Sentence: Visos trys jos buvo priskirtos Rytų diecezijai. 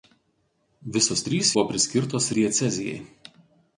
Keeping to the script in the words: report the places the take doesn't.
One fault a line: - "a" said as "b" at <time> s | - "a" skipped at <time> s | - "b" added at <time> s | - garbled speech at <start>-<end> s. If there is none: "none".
- "jos" skipped at 1.5 s
- "Rytų" skipped at 2.3 s